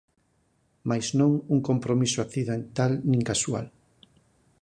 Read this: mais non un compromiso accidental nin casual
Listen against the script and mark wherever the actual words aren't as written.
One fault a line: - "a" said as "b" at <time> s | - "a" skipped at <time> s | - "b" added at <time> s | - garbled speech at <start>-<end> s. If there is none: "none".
none